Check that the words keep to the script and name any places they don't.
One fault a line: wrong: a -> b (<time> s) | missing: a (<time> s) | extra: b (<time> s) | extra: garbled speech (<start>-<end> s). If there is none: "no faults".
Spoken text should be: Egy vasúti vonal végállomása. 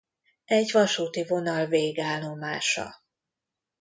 no faults